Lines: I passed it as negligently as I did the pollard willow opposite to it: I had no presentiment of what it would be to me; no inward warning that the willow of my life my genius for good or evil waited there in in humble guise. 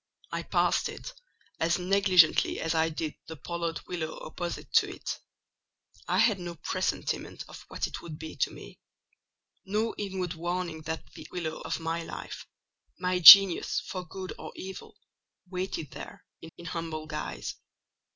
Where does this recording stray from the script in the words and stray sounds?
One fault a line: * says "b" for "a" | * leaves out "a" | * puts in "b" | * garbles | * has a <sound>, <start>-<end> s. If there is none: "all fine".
all fine